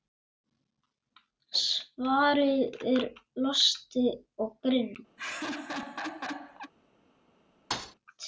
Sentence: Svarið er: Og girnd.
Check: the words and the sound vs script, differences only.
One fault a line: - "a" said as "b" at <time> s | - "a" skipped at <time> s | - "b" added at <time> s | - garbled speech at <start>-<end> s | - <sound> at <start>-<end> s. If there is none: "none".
- "Losti" added at 3.5 s
- laugh at 5.2-6.7 s
- thud at 7.7-8.0 s